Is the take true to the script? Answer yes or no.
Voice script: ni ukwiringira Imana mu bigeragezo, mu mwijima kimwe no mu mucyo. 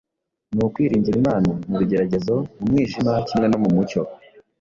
yes